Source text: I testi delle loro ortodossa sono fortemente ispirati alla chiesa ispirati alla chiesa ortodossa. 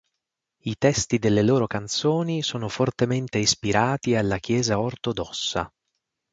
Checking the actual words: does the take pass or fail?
fail